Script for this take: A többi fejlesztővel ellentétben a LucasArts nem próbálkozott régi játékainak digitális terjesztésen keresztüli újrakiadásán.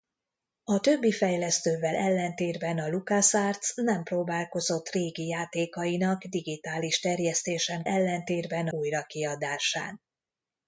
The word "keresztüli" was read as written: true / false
false